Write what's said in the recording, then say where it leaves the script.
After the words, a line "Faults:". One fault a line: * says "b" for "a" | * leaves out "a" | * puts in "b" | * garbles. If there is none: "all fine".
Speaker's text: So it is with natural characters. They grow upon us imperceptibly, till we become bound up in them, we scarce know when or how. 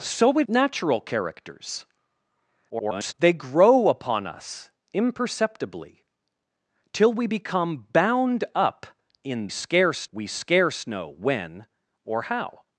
So it natural characters. [garbled] They grow upon us imperceptibly, till we become bound up in scarce, we scarce know when or how.
Faults:
* leaves out "is with"
* garbles
* says "scarce" for "them"